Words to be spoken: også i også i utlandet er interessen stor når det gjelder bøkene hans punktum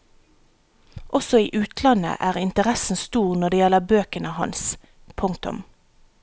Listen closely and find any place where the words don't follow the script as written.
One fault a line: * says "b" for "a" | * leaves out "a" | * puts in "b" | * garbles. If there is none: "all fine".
* leaves out "også i"